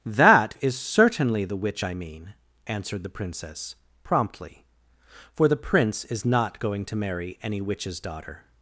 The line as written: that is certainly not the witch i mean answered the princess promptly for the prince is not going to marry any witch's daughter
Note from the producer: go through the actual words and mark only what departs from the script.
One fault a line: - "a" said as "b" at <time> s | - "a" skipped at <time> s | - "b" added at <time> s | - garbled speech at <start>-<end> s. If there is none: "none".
- "not" skipped at 1.4 s